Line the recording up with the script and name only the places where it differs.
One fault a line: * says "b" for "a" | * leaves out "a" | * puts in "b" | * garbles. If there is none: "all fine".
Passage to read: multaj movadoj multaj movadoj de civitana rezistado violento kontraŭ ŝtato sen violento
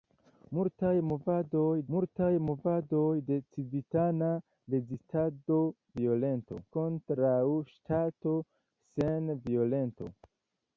all fine